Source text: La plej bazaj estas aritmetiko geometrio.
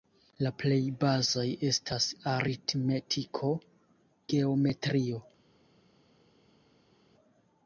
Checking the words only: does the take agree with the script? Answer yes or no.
yes